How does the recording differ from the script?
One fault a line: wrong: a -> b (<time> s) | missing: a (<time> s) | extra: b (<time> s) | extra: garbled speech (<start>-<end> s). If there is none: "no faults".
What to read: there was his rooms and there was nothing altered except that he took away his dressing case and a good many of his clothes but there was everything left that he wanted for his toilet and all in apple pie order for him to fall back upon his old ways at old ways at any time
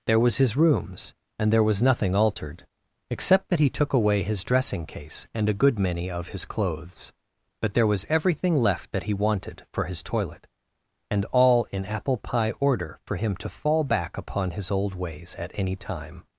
missing: old ways at (15.5 s)